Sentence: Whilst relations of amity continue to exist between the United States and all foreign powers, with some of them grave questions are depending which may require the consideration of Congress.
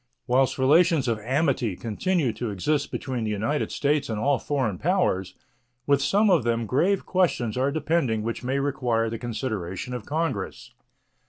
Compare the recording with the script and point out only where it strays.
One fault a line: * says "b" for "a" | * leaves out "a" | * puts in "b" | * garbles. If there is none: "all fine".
all fine